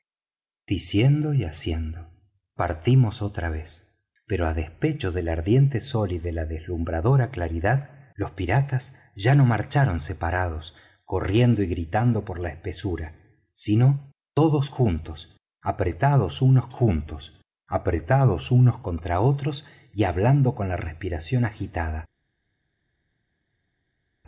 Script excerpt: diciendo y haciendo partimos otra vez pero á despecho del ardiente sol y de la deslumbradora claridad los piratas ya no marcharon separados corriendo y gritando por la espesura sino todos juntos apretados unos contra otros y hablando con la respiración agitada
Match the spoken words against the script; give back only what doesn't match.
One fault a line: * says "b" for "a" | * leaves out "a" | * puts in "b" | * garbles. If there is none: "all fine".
* puts in "juntos apretados unos"